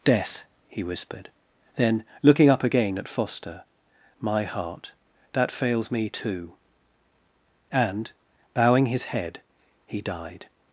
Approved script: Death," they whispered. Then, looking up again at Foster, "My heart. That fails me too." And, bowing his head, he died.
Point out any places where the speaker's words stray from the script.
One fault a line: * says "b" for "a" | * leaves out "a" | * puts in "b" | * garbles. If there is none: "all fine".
* says "he" for "they"